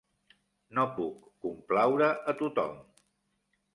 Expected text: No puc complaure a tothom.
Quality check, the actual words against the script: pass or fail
pass